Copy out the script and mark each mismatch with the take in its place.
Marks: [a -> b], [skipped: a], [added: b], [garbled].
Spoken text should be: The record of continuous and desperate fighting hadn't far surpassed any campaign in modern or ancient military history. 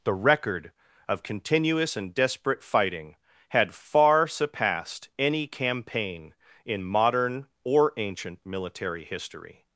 The record of continuous and desperate fighting [hadn't -> had] far surpassed any campaign in modern or ancient military history.